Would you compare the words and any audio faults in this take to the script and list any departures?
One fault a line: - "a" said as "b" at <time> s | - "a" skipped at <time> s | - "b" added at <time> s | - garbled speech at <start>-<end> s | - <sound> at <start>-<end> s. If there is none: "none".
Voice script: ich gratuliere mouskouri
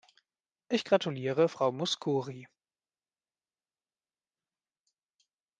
- "frau" added at 1.4 s